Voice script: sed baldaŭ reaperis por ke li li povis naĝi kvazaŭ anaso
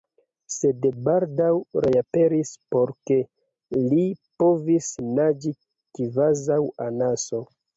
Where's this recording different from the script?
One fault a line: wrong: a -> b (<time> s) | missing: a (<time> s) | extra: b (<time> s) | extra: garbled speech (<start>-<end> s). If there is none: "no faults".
missing: li (4.1 s)